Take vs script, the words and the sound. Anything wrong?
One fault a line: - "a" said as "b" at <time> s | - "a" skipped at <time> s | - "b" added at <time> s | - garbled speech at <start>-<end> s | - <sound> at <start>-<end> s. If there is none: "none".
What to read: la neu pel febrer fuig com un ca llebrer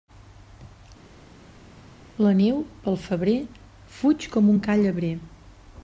none